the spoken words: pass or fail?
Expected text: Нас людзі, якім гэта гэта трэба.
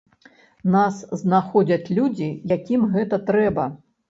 fail